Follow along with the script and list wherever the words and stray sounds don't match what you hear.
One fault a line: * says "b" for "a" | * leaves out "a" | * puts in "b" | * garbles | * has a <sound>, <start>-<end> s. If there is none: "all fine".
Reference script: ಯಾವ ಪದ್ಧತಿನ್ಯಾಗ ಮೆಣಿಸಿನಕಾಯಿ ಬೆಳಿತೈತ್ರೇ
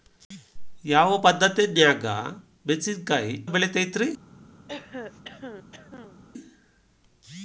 * has a throat clearing, 4.7-6.2 s